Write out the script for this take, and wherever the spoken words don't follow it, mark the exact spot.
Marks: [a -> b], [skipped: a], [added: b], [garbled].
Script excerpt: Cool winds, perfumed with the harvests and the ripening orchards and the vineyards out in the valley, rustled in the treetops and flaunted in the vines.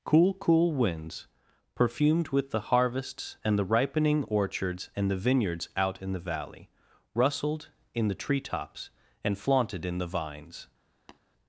Cool [added: cool] winds, perfumed with the harvests and the ripening orchards and the vineyards out in the valley, rustled in the treetops and flaunted in the vines.